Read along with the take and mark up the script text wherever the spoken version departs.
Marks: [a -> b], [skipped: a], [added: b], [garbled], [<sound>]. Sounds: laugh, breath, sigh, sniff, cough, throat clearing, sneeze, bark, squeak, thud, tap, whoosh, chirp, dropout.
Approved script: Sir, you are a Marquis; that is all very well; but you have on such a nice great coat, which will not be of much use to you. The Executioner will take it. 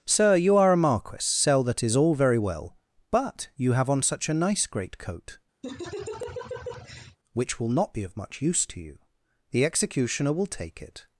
Sir, you are a Marquis; [added: sell] that is all very well; but you have on such a nice great coat, [laugh] which will not be of much use to you. The Executioner will take it.